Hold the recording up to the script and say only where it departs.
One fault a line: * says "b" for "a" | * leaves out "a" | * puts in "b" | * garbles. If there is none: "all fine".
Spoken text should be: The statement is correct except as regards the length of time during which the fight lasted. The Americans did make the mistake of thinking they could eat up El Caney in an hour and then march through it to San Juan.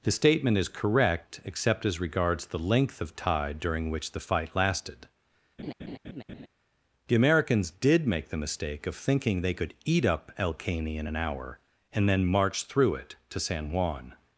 * says "tide" for "time"